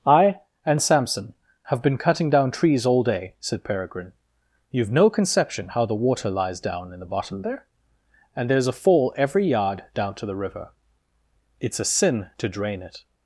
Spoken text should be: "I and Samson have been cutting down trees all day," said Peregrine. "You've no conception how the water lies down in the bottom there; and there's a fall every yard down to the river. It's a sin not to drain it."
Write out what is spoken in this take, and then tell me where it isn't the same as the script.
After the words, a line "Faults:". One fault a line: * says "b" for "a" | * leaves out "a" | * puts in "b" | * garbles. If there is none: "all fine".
"I and Samson have been cutting down trees all day," said Peregrine. "You've no conception how the water lies down in the bottom there; and there's a fall every yard down to the river. It's a sin to drain it."
Faults:
* leaves out "not"